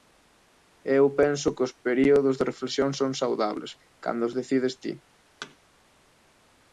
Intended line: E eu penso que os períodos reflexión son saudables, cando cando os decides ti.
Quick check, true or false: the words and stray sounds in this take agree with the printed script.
false